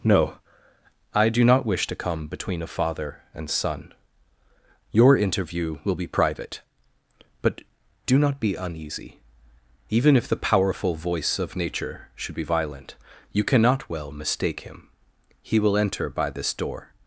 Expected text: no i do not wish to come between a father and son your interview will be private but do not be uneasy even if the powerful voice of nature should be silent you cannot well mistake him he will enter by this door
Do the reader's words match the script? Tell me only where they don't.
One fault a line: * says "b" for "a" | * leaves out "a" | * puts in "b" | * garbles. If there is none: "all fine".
* says "violent" for "silent"